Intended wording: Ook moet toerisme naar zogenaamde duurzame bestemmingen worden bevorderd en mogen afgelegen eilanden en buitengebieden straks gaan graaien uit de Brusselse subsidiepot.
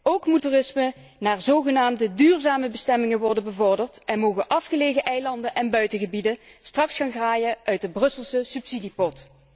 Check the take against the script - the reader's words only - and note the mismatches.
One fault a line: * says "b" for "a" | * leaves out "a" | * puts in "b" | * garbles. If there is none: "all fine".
all fine